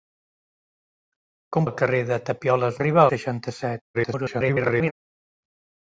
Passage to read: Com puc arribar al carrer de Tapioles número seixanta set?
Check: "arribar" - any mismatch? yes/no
yes